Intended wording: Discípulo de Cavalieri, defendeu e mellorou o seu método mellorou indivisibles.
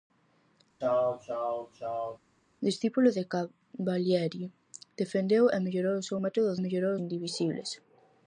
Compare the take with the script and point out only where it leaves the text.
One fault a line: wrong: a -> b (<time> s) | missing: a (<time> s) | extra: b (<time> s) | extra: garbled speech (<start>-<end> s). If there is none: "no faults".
no faults